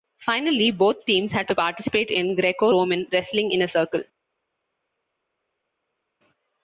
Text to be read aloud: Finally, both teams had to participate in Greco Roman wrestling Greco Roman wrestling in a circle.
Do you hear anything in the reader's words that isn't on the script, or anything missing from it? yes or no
yes